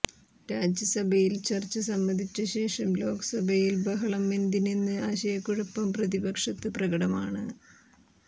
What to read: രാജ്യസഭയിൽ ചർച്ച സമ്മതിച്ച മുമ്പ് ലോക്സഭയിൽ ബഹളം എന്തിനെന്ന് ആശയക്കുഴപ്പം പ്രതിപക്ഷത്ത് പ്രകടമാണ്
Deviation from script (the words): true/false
true